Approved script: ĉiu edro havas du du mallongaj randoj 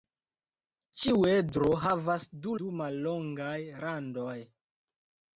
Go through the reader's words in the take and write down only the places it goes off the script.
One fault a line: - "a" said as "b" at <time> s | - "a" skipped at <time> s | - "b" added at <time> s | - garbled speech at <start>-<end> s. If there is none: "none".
none